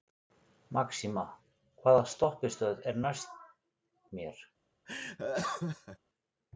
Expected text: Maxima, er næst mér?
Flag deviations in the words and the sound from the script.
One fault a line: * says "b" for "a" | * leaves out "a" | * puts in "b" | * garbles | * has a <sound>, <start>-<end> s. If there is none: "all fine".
* puts in "hvaða stoppistöð"
* has a laugh, 4.9-6.0 s